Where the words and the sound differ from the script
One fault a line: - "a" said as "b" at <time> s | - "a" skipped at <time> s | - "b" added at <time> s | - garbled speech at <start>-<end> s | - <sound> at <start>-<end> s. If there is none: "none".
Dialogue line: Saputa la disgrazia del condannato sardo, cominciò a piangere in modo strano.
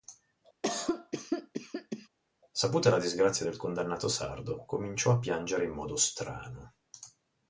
- cough at 0.6-2.1 s